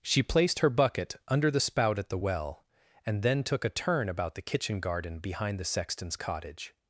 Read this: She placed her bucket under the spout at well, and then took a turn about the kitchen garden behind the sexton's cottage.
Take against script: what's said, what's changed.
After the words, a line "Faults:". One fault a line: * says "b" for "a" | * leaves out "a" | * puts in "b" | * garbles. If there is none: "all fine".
She placed her bucket under the spout at the well, and then took a turn about the kitchen garden behind the sexton's cottage.
Faults:
* puts in "the"